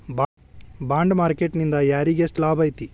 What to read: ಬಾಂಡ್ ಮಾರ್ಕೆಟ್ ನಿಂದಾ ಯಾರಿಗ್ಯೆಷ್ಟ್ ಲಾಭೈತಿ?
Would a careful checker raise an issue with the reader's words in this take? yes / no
no